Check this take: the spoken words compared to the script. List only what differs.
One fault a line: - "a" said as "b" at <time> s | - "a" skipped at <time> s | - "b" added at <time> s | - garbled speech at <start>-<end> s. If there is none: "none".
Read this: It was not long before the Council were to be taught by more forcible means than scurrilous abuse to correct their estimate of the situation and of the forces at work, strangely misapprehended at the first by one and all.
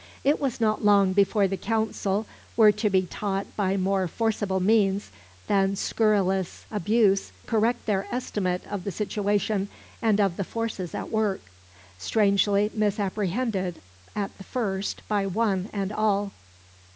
- "to" skipped at 7.3 s